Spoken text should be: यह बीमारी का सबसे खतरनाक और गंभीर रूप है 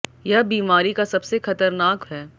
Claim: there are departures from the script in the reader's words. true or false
true